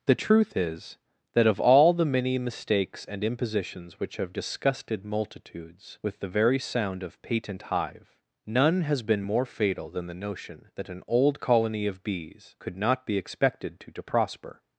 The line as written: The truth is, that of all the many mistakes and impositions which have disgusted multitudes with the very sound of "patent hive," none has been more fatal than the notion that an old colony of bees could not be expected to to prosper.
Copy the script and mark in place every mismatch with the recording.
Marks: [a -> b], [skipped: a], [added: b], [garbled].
The truth is, that of all the many mistakes and impositions which have disgusted multitudes with the very sound of "patent hive," none has been more fatal than the notion that an old colony of bees could not be expected to to prosper.